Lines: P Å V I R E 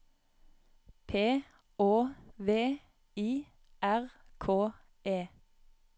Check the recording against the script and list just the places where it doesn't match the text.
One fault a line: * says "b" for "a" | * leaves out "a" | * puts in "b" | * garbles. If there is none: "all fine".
* puts in "K"